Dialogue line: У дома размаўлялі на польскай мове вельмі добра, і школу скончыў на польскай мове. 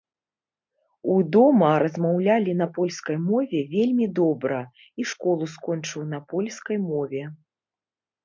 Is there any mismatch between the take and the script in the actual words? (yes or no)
no